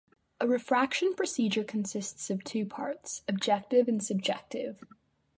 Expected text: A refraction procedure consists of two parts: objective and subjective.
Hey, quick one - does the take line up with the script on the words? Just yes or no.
yes